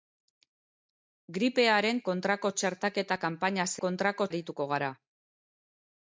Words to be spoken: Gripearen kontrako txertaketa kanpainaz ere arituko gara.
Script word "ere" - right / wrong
wrong